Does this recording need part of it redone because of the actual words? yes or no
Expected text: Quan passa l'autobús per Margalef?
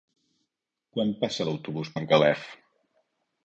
yes